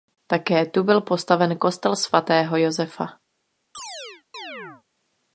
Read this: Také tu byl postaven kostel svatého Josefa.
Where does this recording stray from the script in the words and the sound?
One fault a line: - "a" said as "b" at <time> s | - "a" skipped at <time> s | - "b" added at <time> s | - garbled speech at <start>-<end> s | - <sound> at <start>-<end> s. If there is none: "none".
- chirp at 3.7-4.8 s